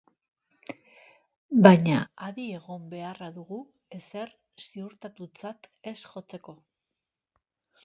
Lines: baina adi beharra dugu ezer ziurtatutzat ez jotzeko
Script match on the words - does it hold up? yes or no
no